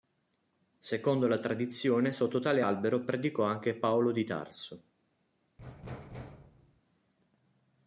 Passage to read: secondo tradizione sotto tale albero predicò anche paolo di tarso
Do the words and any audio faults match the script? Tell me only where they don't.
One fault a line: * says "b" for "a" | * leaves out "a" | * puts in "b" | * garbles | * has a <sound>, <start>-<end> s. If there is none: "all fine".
* puts in "la"
* has a thud, 5.6-6.8 s